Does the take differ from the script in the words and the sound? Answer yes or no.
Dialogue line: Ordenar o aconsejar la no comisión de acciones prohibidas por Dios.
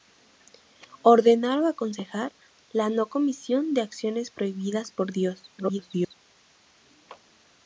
yes